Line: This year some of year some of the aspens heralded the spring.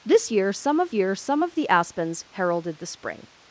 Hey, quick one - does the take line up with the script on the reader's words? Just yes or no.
yes